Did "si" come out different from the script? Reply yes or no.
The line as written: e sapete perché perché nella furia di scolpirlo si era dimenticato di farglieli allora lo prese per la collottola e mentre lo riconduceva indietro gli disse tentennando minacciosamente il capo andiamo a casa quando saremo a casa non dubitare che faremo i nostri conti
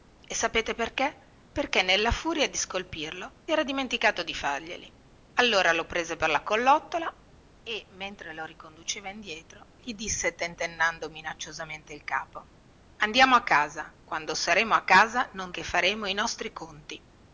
yes